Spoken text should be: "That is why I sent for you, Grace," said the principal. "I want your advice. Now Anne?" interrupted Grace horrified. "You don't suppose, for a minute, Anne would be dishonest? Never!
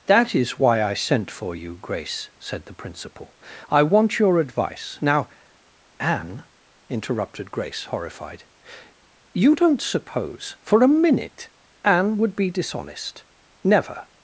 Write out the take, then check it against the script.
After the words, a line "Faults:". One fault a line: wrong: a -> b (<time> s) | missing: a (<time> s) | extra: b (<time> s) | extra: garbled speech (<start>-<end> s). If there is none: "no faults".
"That is why I sent for you, Grace," said the principal. "I want your advice. Now Anne?" interrupted Grace horrified. "You don't suppose, for a minute, Anne would be dishonest? Never!
Faults:
no faults